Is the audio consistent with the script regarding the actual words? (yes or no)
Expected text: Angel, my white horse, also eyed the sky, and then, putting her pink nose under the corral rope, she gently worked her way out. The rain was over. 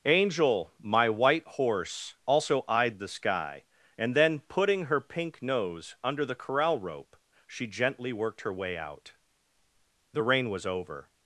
yes